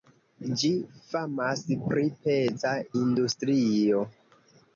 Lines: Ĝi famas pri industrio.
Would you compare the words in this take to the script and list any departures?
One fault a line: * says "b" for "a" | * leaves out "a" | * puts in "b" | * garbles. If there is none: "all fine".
* puts in "peza"